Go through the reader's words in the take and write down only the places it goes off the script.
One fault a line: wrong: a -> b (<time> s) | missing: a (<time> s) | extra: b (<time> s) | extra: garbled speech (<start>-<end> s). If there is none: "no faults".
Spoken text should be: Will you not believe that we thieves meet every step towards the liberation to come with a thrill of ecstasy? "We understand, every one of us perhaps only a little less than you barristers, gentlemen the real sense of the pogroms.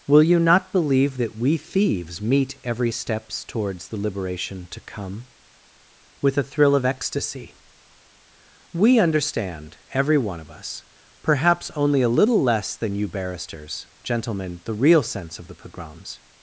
wrong: step -> steps (2.9 s)